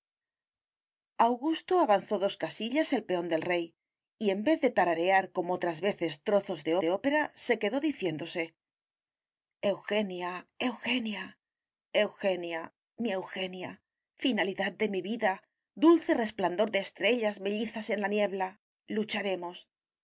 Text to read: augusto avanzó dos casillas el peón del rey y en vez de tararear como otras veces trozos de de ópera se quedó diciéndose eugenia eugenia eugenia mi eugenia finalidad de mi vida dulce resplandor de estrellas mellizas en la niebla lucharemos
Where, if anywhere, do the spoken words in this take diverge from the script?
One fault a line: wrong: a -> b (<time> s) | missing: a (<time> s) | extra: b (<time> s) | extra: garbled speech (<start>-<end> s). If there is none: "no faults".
no faults